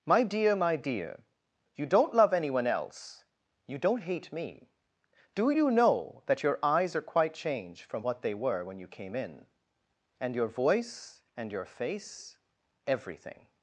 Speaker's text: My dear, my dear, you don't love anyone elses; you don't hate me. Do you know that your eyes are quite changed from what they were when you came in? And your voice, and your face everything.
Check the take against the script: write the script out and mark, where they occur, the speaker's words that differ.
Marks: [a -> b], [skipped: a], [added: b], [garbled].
My dear, my dear, you don't love anyone [elses; -> else] you don't hate me. Do you know that your eyes are quite changed from what they were when you came in? And your voice, and your face everything.